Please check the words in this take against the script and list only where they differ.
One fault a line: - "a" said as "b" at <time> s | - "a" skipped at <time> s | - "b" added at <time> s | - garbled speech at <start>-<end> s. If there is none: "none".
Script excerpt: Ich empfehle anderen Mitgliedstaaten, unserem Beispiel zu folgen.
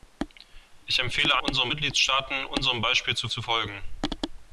- "anderen" said as "unserem" at 1.4 s
- "zu" added at 3.3 s